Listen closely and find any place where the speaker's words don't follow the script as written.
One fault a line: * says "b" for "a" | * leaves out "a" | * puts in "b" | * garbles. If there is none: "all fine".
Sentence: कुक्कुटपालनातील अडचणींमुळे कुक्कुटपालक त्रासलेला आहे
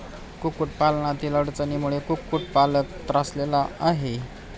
all fine